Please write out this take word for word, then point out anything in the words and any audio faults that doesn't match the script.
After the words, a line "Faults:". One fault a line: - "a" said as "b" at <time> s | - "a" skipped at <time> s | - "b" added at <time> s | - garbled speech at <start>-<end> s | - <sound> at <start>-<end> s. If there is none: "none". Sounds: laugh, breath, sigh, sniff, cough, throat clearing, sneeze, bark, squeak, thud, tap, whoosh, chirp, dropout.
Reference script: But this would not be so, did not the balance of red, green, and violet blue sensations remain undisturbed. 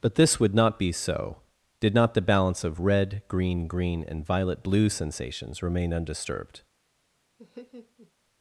But this would not be so, did not the balance of red, green green, and violet blue sensations remain undisturbed.
Faults:
- "green" added at 3.7 s
- laugh at 7.4-8.1 s